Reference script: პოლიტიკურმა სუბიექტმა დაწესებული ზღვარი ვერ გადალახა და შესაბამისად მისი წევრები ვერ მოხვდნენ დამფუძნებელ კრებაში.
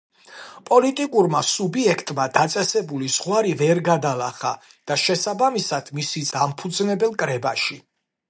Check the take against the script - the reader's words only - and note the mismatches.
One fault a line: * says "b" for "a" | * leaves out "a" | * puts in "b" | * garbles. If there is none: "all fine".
* leaves out "წევრები ვერ მოხვდნენ"